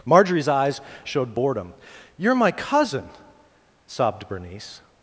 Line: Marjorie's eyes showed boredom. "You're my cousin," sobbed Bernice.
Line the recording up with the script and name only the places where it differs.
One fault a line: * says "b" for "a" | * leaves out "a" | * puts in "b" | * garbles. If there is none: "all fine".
all fine